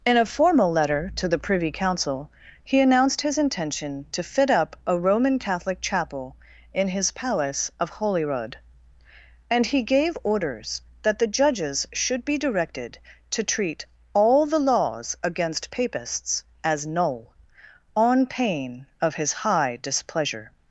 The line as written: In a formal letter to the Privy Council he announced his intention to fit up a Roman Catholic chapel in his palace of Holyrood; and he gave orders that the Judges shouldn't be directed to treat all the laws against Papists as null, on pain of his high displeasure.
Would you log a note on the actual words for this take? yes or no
yes